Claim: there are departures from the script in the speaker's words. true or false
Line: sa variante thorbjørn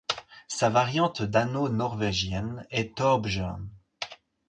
true